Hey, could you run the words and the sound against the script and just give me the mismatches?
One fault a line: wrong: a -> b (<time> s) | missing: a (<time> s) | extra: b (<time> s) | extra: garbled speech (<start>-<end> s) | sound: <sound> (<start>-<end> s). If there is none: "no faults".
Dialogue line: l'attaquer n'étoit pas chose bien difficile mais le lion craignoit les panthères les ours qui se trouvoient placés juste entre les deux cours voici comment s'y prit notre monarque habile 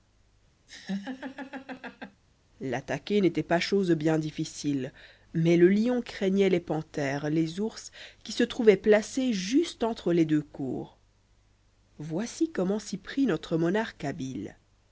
sound: laugh (0.7-2.2 s)